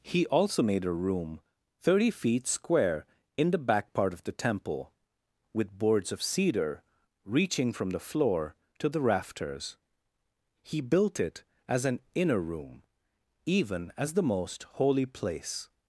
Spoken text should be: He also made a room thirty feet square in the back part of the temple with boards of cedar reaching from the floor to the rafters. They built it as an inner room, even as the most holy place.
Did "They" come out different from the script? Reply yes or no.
yes